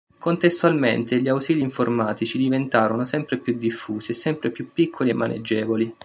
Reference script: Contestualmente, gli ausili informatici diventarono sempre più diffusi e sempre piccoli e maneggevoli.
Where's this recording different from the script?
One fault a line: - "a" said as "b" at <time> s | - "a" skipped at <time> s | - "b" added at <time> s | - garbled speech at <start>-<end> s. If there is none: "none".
- "più" added at 4.5 s